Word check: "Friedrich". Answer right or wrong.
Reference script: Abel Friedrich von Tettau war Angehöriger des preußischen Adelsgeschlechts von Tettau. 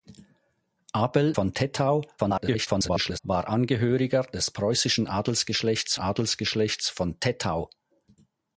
wrong